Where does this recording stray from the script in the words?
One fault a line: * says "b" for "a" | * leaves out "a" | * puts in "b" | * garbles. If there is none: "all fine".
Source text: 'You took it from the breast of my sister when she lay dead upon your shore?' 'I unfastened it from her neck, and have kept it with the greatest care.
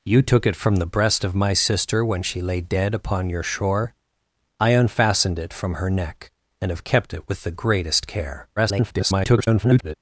* garbles